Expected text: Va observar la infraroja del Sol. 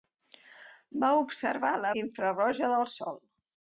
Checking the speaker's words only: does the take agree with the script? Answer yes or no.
yes